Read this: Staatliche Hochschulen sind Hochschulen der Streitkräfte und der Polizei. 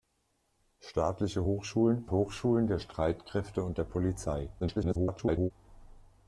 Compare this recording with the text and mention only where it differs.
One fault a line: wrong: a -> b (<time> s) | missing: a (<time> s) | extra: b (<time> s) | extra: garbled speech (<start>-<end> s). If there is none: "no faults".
missing: sind (2.1 s)
extra: garbled speech (4.6-5.5 s)